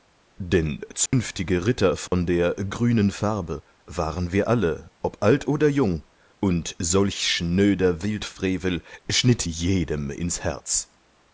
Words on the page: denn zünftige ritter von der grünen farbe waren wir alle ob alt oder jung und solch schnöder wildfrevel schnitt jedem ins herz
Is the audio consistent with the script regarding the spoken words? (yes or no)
yes